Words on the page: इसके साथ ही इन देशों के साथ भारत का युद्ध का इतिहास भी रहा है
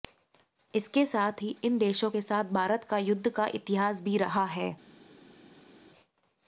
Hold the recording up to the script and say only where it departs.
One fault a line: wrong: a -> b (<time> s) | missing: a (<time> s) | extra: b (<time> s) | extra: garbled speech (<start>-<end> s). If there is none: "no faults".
no faults